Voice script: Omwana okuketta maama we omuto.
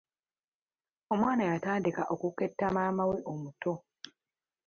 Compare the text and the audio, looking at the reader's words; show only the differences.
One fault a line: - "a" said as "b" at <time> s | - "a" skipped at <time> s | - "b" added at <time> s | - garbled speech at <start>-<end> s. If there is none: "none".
- "yatandika" added at 1.5 s